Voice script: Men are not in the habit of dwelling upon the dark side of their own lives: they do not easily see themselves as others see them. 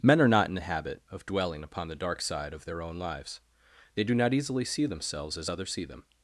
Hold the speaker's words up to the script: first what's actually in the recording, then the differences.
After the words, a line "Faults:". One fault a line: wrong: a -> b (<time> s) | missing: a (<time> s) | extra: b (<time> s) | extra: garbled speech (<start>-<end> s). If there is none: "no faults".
Men are not in the habit of dwelling upon the dark side of their own lives: they do not easily see themselves as others see them.
Faults:
no faults